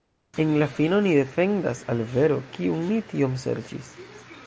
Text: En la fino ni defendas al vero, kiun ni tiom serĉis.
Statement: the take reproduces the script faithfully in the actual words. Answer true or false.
true